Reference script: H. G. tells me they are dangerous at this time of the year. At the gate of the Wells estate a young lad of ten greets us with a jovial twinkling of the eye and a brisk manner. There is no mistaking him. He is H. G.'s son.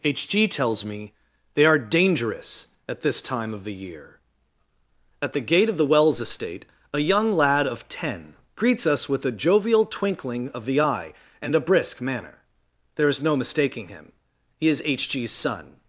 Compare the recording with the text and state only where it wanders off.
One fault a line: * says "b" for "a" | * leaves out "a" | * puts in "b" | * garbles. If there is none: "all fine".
all fine